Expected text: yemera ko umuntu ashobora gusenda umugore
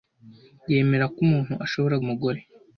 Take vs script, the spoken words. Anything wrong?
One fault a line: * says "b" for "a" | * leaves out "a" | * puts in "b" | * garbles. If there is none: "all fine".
* leaves out "gusenda"